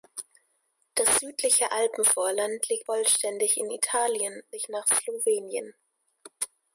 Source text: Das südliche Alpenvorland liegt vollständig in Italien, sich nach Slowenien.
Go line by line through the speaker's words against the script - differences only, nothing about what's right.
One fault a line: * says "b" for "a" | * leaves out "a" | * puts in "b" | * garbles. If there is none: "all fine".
all fine